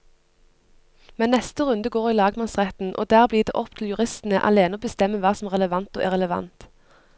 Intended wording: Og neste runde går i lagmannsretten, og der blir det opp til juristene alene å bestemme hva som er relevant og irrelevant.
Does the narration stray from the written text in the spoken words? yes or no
yes